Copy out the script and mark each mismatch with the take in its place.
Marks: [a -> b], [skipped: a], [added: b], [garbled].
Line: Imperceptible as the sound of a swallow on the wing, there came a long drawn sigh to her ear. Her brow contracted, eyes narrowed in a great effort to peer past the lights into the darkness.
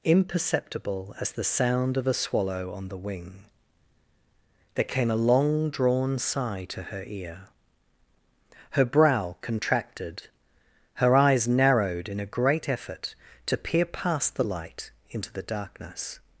Imperceptible as the sound of a swallow on the wing, there came a long drawn sigh to her ear. Her brow contracted, [added: her] eyes narrowed in a great effort to peer past the [lights -> light] into the darkness.